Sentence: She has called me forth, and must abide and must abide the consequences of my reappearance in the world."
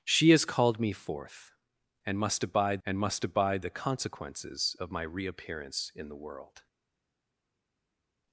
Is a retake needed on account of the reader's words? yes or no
no